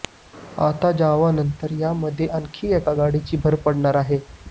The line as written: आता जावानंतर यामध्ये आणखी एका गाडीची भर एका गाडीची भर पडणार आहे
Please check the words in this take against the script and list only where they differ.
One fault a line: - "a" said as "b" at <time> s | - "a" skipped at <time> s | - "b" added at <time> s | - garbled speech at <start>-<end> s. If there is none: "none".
- "एका गाडीची भर" skipped at 3.5 s